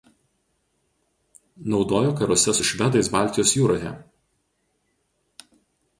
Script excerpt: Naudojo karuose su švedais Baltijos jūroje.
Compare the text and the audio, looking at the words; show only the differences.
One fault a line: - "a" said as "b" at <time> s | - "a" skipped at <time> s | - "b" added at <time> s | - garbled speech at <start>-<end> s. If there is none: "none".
none